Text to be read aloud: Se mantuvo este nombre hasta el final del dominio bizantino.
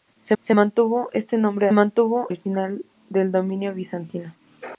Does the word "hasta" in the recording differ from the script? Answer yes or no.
yes